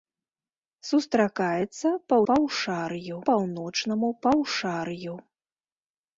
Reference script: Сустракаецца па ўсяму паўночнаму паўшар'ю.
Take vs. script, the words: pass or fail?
fail